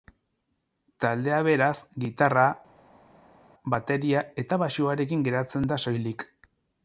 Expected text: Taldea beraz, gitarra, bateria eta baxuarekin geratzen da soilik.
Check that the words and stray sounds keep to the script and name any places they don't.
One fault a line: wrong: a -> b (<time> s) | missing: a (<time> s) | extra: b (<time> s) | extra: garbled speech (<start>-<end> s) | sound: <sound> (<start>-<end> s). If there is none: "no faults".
no faults